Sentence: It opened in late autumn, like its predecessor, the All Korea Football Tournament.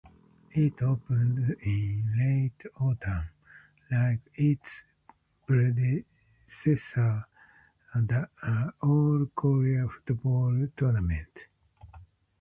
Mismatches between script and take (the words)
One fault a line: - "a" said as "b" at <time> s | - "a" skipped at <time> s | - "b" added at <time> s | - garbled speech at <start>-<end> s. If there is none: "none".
none